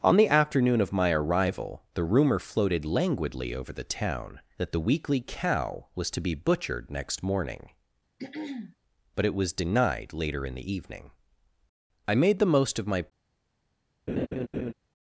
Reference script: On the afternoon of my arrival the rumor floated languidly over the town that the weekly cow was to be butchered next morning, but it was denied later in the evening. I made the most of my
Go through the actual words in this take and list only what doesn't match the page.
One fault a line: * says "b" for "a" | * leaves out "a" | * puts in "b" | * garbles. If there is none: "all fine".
all fine